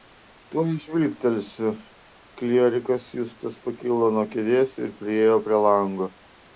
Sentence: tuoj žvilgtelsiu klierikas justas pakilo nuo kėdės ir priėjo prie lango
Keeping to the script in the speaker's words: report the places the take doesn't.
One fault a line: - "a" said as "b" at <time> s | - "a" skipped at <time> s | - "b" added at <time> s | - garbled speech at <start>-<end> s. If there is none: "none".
none